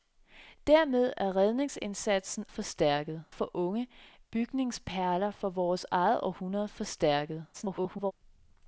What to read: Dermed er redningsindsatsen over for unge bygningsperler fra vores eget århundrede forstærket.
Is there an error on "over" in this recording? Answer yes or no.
yes